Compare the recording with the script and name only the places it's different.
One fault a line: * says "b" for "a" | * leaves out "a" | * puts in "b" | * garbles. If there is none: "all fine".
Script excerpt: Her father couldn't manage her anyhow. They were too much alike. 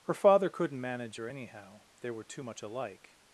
all fine